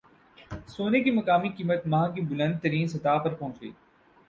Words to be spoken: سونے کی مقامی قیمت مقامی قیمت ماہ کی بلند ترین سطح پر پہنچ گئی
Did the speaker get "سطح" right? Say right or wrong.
right